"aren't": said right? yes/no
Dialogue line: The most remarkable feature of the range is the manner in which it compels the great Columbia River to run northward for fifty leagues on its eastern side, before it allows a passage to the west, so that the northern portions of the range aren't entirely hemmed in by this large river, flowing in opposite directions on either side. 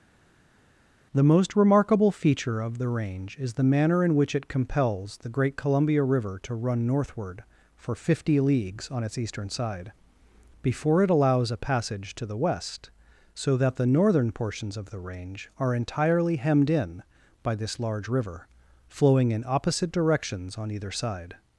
no